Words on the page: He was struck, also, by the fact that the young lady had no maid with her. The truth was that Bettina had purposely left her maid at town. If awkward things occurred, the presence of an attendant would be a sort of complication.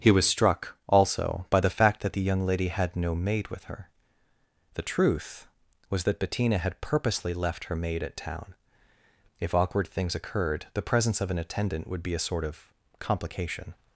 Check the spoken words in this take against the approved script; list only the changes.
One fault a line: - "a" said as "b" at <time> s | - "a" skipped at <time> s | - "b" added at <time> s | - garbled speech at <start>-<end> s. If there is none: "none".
none